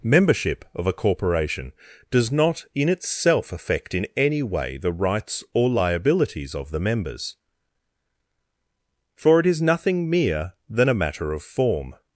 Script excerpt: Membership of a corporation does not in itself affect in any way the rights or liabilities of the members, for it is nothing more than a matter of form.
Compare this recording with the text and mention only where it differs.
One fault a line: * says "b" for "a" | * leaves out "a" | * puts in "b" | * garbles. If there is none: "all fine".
* says "mere" for "more"